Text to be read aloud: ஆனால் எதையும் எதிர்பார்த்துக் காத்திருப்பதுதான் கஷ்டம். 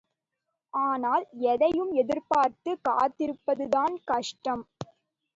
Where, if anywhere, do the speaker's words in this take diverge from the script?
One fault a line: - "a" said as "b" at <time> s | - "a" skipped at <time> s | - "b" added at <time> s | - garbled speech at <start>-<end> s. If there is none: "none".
none